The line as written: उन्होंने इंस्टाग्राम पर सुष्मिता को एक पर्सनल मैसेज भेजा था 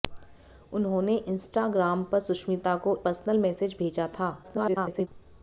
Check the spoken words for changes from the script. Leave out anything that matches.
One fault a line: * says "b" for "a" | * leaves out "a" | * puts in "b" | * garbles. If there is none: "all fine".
* leaves out "एक"
* garbles